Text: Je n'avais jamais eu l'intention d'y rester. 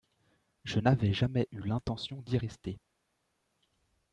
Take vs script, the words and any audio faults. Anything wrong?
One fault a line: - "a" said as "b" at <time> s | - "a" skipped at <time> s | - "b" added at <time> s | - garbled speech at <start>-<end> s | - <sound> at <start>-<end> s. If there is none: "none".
none